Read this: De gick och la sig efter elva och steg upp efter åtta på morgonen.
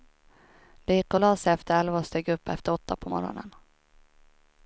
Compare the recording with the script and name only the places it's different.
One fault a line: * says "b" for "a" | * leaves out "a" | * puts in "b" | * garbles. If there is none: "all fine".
all fine